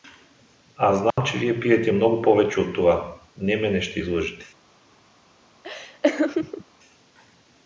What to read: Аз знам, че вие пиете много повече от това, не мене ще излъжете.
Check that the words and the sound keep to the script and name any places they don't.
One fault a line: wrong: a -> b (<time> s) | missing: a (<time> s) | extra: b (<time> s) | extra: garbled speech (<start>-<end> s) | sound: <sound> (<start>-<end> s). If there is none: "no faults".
sound: dropout (1.1-1.2 s)
sound: laugh (5.6-6.6 s)